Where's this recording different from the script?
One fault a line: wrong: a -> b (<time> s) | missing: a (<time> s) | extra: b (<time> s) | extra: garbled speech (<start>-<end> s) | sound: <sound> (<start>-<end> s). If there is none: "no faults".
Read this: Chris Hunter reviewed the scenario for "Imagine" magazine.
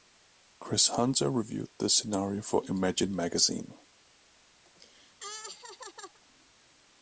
sound: laugh (4.7-6.2 s)